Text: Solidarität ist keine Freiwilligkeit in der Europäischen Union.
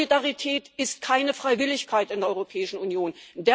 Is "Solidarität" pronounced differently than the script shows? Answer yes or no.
no